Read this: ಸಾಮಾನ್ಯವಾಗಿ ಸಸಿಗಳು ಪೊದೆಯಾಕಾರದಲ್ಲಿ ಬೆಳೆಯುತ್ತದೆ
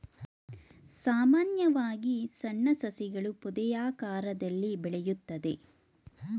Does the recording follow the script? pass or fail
fail